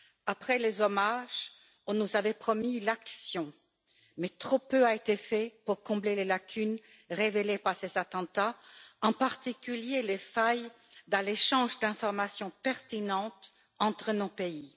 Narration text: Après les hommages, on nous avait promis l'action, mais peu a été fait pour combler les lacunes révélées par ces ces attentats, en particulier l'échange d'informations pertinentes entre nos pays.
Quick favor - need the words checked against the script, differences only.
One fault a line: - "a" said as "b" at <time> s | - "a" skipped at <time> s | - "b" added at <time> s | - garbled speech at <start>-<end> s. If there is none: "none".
- "trop" added at 4.3 s
- "ces" skipped at 8.0 s
- "les failles dans" added at 10.0 s